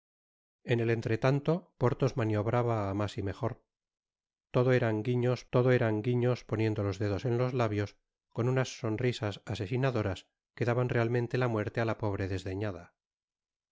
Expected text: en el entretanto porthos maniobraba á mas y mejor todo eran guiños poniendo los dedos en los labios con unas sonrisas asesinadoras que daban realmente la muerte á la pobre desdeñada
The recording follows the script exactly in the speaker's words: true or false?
false